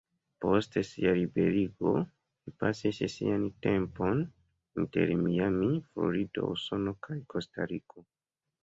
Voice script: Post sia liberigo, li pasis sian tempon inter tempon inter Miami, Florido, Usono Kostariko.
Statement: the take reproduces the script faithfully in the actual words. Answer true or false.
false